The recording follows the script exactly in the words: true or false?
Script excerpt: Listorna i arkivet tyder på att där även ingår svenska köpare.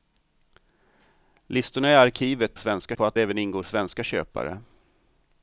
false